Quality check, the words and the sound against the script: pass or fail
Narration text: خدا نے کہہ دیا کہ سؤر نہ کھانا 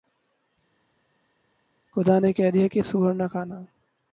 pass